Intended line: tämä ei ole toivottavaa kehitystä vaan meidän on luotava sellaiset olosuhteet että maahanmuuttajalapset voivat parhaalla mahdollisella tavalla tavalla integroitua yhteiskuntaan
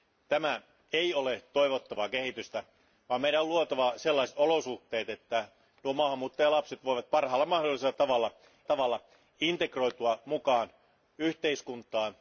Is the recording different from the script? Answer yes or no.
no